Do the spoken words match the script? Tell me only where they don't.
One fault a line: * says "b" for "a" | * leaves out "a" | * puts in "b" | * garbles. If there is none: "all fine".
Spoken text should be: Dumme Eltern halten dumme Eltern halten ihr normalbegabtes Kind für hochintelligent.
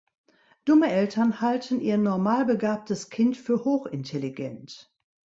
* leaves out "dumme Eltern halten"